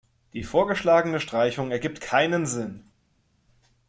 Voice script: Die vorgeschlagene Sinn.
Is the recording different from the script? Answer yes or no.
yes